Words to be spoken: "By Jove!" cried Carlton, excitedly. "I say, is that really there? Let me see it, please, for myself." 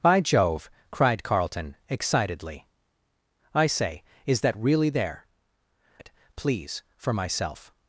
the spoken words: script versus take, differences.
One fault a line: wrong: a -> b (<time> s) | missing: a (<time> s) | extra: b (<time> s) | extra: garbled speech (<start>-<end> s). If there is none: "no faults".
missing: Let me see (5.3 s)